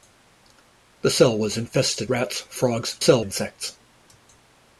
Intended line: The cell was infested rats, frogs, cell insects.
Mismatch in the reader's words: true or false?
false